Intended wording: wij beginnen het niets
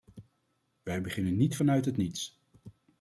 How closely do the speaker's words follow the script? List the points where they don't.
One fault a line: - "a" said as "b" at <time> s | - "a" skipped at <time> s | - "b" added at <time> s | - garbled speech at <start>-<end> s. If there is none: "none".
- "niet vanuit" added at 1.4 s